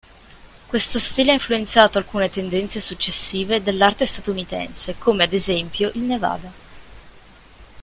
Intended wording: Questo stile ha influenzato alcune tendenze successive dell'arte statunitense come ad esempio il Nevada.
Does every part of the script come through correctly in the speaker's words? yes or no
yes